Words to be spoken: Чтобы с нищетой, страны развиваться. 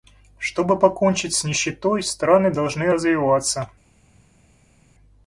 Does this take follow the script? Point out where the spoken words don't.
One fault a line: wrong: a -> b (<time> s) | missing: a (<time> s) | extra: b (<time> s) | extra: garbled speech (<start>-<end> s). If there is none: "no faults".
extra: покончить (0.8 s)
extra: должны (2.5 s)